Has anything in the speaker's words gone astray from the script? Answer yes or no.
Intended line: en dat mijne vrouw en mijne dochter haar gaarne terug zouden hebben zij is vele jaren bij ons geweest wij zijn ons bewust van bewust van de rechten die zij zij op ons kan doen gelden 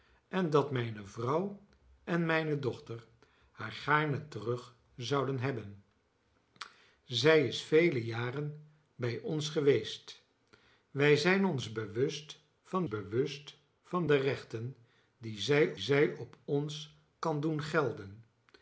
no